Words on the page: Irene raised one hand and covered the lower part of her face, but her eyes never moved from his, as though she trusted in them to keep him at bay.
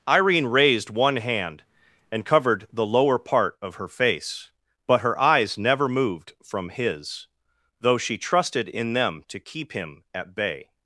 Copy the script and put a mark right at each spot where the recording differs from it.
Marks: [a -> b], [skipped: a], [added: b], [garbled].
Irene raised one hand and covered the lower part of her face, but her eyes never moved from his, [skipped: as] though she trusted in them to keep him at bay.